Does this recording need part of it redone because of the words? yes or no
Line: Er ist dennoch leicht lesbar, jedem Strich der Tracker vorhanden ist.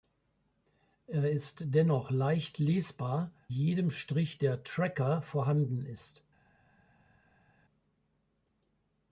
no